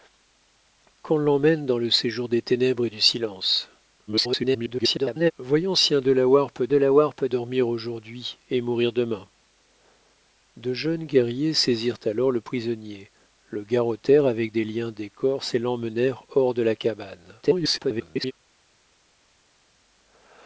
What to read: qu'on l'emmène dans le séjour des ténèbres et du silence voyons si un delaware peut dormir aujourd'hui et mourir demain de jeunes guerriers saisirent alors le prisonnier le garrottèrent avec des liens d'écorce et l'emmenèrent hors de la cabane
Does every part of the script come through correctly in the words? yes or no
no